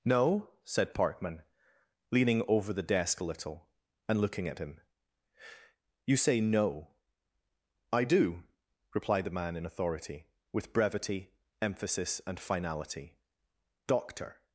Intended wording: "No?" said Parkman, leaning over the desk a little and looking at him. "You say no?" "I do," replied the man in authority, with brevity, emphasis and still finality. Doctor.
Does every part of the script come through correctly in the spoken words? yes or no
no